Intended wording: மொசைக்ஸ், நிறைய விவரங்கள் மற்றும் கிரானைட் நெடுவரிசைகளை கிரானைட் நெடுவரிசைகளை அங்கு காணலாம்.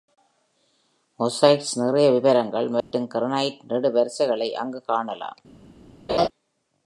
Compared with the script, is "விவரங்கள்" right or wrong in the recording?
right